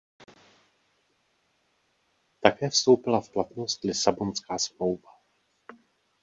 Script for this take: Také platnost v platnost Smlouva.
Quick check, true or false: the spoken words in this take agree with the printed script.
false